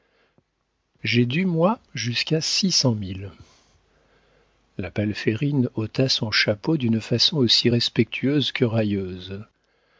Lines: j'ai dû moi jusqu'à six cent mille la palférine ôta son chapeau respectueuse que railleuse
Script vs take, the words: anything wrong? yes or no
yes